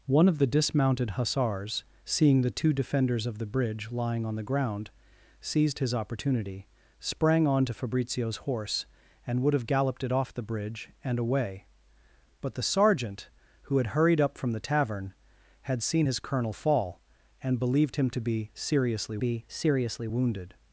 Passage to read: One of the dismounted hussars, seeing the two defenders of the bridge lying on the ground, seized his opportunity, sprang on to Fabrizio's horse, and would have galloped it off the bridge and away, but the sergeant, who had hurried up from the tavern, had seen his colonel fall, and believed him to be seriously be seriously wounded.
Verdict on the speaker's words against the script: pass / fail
pass